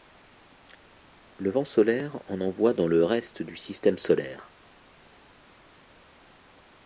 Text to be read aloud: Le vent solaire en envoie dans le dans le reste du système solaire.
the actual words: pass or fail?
fail